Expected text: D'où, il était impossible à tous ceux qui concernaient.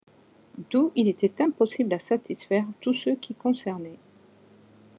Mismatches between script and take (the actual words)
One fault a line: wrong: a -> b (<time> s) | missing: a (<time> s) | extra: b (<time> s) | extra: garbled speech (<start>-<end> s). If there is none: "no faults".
extra: satisfaire (2.0 s)